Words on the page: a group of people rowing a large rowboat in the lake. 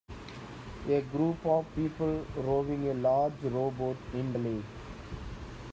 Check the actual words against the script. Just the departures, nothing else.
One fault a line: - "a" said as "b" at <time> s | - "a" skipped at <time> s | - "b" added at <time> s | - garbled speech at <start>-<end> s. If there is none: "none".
none